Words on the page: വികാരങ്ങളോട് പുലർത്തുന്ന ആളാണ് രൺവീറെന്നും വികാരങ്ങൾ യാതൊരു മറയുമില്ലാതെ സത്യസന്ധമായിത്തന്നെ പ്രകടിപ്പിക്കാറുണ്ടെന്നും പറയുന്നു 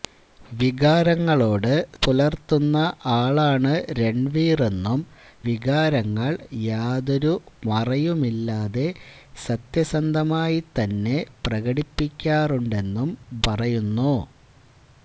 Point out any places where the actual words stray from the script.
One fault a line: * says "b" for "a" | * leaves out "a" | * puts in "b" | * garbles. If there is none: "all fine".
all fine